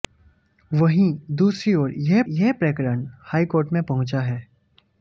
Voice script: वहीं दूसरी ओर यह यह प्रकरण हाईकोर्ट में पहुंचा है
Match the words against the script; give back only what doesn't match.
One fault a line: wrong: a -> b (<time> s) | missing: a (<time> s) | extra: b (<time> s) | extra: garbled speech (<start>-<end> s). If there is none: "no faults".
no faults